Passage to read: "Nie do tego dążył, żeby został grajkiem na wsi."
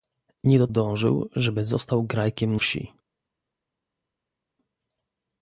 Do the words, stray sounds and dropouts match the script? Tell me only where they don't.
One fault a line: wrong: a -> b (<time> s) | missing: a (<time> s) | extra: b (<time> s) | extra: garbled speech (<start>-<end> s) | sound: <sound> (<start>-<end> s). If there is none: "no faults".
missing: tego (0.7 s)
missing: na (2.6 s)